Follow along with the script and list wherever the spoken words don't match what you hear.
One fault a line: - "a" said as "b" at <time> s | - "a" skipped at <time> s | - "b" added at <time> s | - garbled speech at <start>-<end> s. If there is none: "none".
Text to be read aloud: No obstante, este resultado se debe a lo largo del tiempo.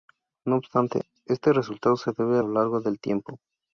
none